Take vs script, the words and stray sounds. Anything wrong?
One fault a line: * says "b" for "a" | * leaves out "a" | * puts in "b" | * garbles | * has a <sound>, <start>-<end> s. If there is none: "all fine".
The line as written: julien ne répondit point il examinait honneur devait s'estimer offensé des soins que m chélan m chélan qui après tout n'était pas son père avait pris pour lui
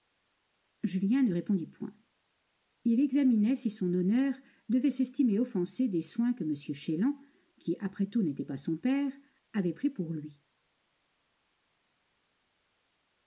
* puts in "si son"
* leaves out "m chélan"